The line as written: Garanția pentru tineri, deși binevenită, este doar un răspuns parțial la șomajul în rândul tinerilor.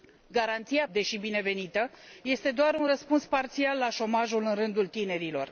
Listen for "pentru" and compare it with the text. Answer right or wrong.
wrong